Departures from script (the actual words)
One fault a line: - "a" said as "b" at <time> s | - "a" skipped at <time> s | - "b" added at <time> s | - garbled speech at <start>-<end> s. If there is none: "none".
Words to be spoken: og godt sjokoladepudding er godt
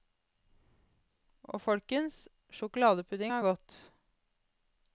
- "godt" said as "folkens" at 1.6 s